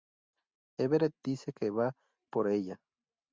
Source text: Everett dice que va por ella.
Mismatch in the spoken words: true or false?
false